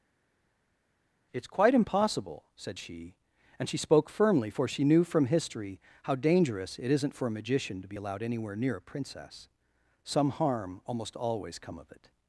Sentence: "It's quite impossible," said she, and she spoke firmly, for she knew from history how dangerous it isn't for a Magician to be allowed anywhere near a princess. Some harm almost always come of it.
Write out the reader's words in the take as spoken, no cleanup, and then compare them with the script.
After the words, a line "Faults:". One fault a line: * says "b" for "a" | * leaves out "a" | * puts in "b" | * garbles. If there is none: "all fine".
"It's quite impossible," said she, and she spoke firmly, for she knew from history how dangerous it isn't for a Magician to be allowed anywhere near a princess. Some harm almost always come of it.
Faults:
all fine